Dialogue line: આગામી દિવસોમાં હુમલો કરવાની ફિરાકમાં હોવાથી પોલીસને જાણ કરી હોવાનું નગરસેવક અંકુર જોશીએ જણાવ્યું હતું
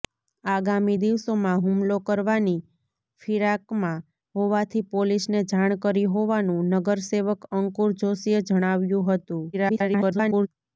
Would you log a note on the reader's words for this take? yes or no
yes